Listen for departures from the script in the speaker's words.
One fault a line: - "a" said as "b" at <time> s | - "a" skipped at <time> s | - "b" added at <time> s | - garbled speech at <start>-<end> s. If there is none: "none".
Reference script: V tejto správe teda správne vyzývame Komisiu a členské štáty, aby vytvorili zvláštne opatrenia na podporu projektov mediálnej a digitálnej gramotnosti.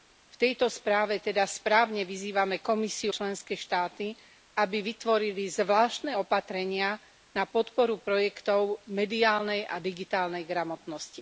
- "a" skipped at 3.1 s